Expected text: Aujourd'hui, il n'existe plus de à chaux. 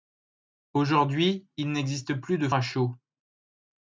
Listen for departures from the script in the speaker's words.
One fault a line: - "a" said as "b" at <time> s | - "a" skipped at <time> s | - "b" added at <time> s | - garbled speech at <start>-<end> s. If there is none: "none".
none